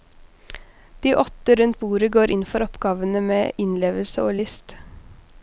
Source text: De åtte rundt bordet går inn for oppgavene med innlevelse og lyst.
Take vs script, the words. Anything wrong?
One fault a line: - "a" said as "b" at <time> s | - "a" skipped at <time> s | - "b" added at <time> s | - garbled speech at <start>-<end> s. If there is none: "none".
none